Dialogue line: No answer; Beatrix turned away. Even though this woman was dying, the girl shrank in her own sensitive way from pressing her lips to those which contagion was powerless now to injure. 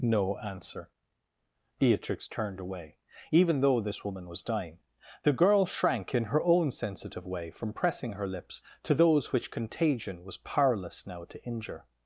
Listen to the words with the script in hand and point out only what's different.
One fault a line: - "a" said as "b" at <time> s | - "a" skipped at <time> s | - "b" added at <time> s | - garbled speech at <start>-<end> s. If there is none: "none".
none